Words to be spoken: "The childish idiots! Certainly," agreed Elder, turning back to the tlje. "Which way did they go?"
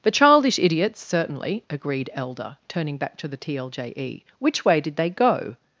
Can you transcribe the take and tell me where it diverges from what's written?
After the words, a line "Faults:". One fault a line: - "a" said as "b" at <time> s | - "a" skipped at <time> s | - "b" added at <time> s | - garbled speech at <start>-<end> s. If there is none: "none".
"The childish idiots! Certainly," agreed Elder, turning back to the tlje. "Which way did they go?"
Faults:
none